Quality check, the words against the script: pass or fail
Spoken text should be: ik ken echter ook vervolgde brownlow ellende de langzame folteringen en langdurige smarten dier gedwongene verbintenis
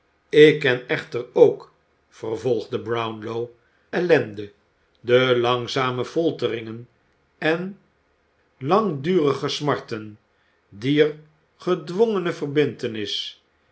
pass